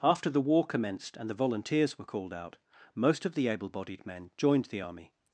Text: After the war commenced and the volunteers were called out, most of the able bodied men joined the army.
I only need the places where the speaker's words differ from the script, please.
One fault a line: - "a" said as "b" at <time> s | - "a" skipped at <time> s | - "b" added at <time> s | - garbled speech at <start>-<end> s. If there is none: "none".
none